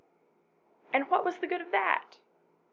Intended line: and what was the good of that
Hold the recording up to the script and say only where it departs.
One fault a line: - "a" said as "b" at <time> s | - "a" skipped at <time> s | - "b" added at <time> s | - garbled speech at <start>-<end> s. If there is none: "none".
none